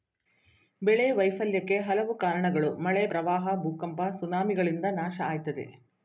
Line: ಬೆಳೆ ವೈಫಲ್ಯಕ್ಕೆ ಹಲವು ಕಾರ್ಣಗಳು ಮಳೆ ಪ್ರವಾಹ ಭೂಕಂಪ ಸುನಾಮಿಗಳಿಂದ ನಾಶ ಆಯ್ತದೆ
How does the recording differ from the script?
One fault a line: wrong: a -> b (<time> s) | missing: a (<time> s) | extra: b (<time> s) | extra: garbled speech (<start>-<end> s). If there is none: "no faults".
no faults